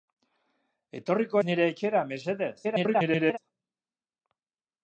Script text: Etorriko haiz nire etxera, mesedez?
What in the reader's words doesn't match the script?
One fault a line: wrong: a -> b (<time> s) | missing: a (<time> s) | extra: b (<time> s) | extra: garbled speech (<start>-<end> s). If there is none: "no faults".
missing: haiz (1.4 s)
extra: garbled speech (2.6-3.4 s)